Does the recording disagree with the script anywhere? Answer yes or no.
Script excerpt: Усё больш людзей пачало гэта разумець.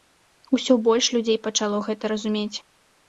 no